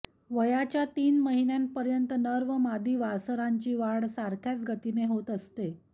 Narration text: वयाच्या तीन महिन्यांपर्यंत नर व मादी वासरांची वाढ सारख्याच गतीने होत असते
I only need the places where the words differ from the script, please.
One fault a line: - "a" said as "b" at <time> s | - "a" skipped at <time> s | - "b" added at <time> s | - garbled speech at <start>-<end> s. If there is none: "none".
none